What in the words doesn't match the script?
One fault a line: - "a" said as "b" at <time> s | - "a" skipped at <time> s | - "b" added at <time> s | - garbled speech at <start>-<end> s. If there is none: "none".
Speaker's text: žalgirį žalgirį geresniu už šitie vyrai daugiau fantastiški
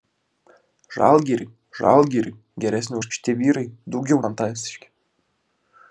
none